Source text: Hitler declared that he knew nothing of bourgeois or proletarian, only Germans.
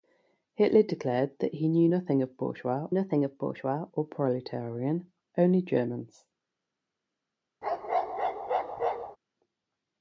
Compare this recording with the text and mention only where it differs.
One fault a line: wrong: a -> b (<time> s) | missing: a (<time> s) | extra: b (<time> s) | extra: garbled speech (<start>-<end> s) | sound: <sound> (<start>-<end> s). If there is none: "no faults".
extra: nothing of bourgeois (2.9 s)
sound: bark (7.6-9.2 s)